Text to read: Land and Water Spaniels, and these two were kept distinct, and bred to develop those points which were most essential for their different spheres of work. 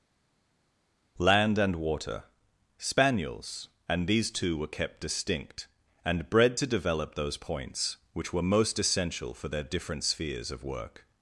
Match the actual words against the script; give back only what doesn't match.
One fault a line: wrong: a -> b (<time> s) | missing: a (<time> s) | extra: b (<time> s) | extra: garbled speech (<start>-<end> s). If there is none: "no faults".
no faults